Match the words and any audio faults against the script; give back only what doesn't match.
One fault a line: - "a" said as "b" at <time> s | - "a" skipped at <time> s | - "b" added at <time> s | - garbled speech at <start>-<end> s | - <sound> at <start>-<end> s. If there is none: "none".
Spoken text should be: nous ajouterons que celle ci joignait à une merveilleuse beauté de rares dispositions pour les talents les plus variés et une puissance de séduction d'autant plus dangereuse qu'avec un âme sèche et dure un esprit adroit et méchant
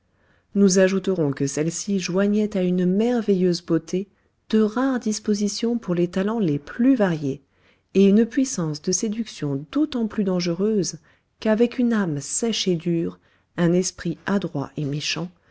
- "un" said as "une" at 11.8 s